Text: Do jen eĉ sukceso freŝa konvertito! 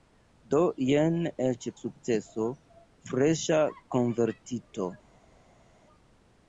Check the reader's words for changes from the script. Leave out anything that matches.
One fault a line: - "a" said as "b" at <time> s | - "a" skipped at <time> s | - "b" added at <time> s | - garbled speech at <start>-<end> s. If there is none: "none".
none